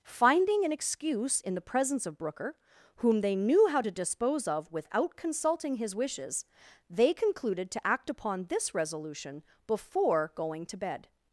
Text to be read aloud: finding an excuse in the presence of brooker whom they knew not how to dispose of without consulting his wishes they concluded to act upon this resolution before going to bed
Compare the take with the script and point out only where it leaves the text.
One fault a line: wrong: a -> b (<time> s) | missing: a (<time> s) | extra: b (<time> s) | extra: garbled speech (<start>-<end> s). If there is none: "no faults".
missing: not (3.7 s)